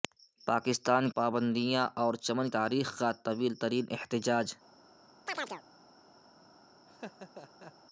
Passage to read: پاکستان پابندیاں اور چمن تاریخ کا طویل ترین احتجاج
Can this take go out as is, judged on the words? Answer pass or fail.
pass